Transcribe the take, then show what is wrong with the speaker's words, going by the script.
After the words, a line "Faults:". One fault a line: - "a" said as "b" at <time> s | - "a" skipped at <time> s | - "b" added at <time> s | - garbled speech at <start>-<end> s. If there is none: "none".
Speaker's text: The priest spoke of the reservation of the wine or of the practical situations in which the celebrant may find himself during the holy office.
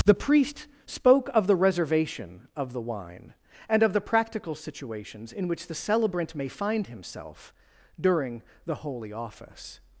The priest spoke of the reservation of the wine and of the practical situations in which the celebrant may find himself during the holy office.
Faults:
- "or" said as "and" at 3.7 s